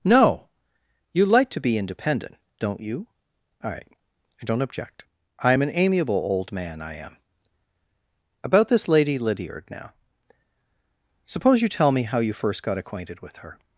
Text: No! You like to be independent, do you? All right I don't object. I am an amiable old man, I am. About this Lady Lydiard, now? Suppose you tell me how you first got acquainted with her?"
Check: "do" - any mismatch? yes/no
yes